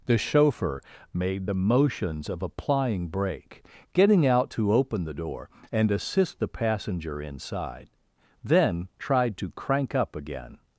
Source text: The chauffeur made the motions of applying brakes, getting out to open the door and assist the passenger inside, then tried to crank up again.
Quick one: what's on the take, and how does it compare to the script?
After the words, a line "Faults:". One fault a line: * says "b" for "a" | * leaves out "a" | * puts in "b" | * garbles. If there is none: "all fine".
The chauffeur made the motions of applying brake, getting out to open the door and assist the passenger inside, then tried to crank up again.
Faults:
* says "brake" for "brakes"